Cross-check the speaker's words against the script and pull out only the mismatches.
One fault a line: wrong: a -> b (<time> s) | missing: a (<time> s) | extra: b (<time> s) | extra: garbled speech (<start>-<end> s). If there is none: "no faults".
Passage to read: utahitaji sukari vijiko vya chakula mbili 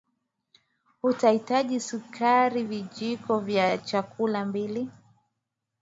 no faults